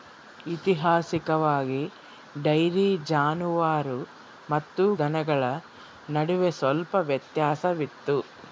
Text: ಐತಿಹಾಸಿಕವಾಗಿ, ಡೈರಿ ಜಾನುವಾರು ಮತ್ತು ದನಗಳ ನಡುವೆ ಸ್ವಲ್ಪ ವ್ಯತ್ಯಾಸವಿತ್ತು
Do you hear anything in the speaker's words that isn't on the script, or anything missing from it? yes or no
no